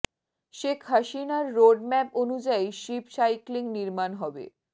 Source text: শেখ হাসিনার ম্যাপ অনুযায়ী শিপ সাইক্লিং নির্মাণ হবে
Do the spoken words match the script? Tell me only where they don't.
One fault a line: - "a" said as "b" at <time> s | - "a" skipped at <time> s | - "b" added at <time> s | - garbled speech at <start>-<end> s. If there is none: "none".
- "রোড" added at 1.6 s